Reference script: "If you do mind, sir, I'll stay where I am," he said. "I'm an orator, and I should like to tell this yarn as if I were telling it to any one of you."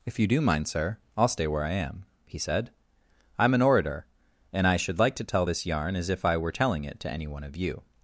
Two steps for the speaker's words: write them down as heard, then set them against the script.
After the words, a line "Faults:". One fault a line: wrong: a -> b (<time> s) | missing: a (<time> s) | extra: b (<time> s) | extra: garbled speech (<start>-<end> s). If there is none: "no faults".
"If you do mind, sir, I'll stay where I am," he said. "I'm an orator, and I should like to tell this yarn as if I were telling it to any one of you."
Faults:
no faults